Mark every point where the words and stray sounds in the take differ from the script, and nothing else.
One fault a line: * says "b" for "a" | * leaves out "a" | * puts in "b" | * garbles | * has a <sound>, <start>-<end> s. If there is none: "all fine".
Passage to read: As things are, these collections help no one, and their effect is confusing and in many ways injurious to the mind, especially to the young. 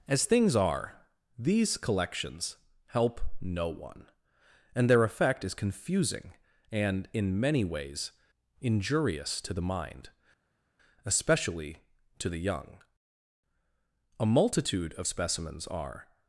* puts in "A multitude of specimens are"